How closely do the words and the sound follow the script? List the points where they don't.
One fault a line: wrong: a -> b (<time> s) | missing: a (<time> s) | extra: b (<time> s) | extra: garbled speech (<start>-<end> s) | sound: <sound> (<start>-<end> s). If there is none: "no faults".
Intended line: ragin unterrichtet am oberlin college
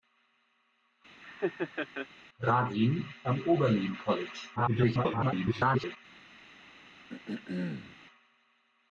sound: laugh (1.2-2.1 s)
missing: unterrichtet (3.0 s)
extra: garbled speech (4.6-6.0 s)
sound: throat clearing (7.1-8.0 s)